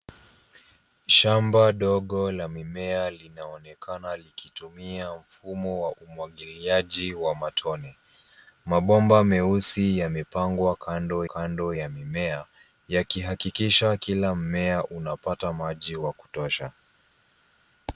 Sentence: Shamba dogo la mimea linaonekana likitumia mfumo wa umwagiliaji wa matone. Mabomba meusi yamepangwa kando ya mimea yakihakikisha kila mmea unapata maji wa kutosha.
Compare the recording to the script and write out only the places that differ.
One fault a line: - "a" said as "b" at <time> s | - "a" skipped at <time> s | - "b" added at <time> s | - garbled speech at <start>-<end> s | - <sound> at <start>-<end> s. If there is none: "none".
- "kando" added at 11.2 s